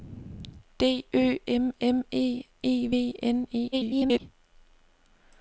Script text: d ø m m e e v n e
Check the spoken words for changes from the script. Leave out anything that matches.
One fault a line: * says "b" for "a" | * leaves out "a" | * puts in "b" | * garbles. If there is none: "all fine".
* garbles